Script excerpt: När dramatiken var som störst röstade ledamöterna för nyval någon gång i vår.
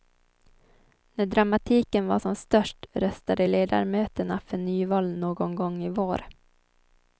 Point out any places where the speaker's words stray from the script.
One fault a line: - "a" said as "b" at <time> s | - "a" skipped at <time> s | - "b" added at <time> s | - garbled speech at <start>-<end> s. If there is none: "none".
none